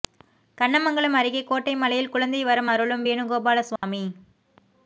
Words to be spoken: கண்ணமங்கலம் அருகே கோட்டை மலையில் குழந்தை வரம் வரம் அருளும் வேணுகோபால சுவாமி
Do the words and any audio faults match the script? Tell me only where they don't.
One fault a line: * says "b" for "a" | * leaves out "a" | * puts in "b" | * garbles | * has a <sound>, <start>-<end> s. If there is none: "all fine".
* leaves out "வரம்"
* has a dropout, 3.8-3.8 s